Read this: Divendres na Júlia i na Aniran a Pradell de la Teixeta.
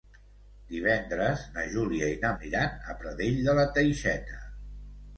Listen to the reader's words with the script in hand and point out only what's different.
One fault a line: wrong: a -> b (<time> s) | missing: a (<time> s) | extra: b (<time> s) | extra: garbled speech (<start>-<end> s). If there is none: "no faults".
no faults